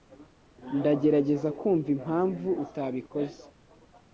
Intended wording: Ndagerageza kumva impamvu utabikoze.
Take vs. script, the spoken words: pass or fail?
pass